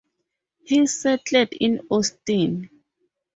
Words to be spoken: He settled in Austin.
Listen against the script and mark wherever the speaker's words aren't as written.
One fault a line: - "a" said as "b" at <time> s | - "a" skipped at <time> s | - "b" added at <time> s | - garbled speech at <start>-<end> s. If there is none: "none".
none